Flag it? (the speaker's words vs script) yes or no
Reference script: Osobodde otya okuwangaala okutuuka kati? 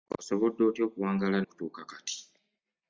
no